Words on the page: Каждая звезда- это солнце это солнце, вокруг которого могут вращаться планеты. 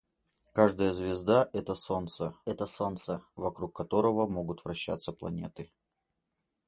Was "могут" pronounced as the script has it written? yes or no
yes